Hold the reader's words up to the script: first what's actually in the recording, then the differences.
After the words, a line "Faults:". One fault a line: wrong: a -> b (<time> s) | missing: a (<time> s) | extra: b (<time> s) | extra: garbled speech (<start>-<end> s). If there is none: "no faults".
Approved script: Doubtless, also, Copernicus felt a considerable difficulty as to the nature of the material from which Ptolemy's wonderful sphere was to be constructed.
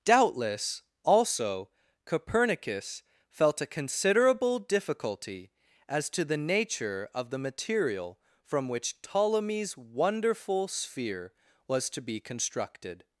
Doubtless, also, Copernicus felt a considerable difficulty as to the nature of the material from which Ptolemy's wonderful sphere was to be constructed.
Faults:
no faults